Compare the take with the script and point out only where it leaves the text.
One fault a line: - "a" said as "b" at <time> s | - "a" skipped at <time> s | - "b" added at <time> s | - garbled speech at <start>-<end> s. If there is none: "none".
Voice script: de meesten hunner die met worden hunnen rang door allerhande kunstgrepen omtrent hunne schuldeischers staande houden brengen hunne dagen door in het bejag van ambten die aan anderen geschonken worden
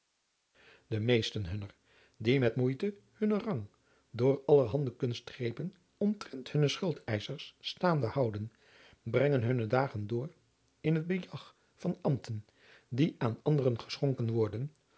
- "worden" said as "moeite" at 2.5 s